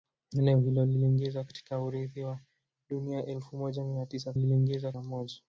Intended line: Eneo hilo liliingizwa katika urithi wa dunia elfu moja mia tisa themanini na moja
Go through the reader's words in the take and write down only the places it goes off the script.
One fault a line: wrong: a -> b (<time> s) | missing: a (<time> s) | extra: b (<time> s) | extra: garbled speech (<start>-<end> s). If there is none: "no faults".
wrong: themanini -> liliingizwa (4.3 s)